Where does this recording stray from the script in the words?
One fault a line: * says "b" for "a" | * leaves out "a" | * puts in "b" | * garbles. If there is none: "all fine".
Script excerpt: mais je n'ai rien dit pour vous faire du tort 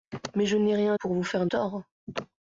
* leaves out "dit"
* leaves out "du"